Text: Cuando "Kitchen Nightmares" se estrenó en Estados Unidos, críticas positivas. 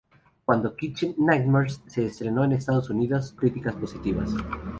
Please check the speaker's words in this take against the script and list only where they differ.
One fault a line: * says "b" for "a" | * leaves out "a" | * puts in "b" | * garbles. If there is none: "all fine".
all fine